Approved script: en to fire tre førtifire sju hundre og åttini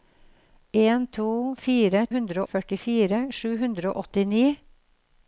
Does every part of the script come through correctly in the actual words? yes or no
no